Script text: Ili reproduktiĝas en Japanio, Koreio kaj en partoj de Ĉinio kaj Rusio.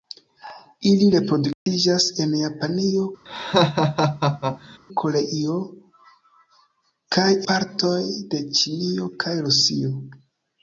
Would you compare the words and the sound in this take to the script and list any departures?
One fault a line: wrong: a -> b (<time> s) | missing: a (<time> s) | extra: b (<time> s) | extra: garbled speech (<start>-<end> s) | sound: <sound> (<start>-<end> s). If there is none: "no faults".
sound: dropout (1.5-1.7 s)
sound: laugh (3.3-4.8 s)
missing: en (7.3 s)